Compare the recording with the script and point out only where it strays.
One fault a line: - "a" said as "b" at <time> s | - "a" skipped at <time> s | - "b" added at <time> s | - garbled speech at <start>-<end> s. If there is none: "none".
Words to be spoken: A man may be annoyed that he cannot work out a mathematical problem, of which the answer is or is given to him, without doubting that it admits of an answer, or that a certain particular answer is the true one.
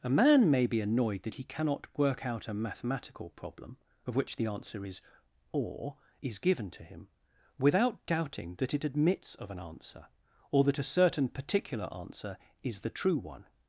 none